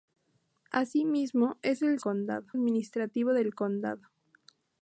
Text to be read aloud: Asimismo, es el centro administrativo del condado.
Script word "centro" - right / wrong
wrong